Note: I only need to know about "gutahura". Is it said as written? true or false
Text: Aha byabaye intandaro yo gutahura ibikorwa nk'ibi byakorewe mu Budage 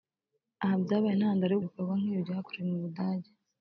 false